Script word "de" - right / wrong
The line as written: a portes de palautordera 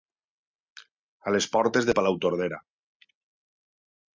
right